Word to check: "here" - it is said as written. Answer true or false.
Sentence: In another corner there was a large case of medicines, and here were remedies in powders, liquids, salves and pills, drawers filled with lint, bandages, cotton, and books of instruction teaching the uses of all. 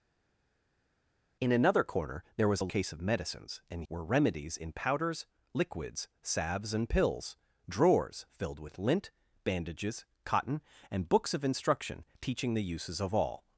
false